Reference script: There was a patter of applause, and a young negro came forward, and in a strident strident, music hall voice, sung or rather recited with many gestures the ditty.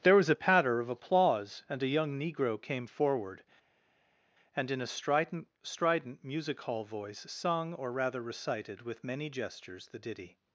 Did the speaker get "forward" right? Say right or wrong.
right